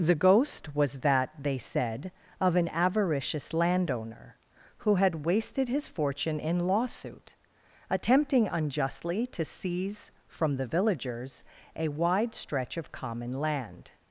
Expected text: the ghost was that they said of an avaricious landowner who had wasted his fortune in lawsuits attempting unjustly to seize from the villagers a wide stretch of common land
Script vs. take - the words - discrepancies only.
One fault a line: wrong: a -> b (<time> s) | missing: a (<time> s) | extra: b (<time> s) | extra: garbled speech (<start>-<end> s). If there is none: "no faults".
wrong: lawsuits -> lawsuit (6.7 s)